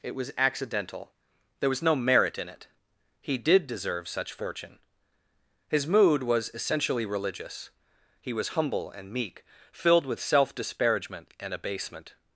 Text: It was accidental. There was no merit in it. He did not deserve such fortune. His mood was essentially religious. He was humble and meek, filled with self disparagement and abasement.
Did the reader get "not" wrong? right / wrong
wrong